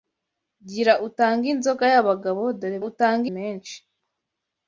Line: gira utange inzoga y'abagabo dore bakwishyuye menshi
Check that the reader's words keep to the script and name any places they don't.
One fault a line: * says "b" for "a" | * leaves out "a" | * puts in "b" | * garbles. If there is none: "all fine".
* says "utange" for "bakwishyuye"